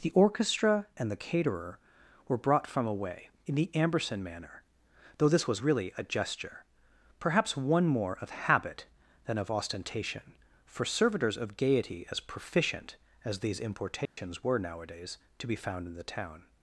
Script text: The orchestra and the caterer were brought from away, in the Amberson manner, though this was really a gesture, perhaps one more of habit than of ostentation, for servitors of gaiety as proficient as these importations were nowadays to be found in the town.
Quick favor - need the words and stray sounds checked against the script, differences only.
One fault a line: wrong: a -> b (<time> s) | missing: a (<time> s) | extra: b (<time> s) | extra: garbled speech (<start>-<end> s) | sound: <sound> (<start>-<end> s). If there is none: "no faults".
sound: dropout (14.1-14.2 s)